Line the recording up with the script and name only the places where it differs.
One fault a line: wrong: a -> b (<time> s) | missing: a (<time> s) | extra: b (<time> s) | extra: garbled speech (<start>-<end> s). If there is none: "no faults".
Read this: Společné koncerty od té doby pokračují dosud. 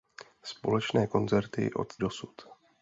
missing: té doby pokračují (2.0 s)